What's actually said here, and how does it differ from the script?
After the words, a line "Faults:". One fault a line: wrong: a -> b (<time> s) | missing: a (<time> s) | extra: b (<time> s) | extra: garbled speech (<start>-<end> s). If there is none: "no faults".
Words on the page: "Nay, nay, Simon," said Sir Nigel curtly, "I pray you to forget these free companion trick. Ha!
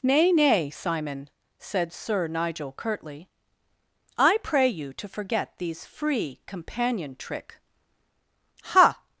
"Nay, nay, Simon," said Sir Nigel curtly, "I pray you to forget these free companion trick. Ha!
Faults:
no faults